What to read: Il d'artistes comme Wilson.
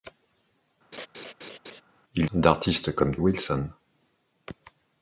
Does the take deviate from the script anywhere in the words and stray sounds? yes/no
yes